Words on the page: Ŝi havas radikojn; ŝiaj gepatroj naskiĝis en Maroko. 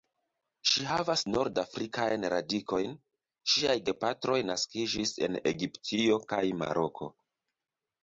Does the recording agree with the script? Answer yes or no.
no